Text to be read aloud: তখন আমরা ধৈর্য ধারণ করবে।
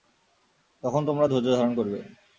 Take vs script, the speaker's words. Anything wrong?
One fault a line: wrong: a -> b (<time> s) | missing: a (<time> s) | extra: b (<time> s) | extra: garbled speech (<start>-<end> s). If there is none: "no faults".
wrong: আমরা -> তোমরা (1.1 s)